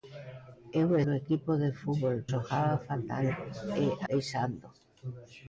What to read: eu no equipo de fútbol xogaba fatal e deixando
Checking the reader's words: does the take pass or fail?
pass